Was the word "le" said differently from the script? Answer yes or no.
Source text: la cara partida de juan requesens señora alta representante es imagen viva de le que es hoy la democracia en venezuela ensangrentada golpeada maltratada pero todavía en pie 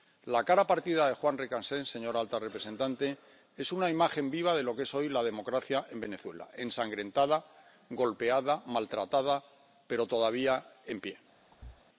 yes